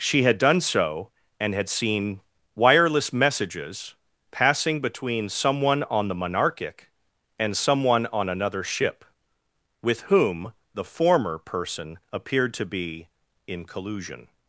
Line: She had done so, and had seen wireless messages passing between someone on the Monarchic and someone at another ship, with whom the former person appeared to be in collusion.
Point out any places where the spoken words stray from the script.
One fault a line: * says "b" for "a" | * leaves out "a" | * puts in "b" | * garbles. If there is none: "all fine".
* says "on" for "at"